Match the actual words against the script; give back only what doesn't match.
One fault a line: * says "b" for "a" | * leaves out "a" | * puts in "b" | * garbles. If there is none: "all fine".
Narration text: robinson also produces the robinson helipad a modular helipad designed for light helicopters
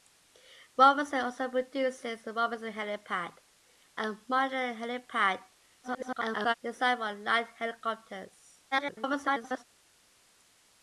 * garbles
* garbles